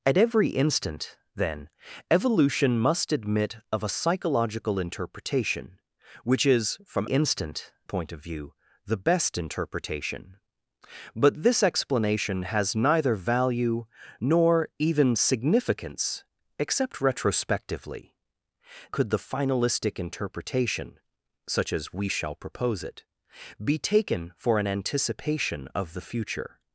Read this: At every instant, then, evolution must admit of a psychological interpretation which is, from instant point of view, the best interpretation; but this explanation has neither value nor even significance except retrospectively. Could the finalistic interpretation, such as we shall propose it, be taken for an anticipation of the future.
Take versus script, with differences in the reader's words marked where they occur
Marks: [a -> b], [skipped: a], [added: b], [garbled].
At every instant, then, evolution must admit of a psychological interpretation which is, from instant point of view, the best interpretation; but this explanation has neither value nor even significance except retrospectively. Could the finalistic interpretation, such as we shall propose it, be taken for an anticipation of the future.